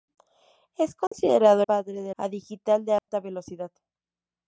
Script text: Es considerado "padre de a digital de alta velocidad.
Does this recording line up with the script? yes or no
yes